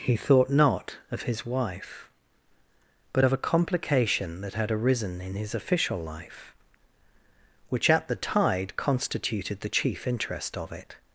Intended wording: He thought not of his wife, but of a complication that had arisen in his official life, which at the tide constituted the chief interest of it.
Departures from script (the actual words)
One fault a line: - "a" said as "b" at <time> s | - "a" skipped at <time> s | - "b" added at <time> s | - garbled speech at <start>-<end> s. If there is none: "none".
none